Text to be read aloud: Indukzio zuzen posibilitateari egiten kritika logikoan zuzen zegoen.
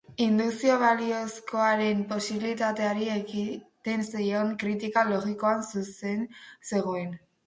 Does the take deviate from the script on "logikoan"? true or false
false